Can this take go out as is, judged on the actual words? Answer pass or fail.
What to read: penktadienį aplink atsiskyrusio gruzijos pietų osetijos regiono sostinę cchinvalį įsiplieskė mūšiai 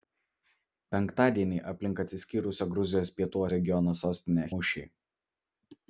fail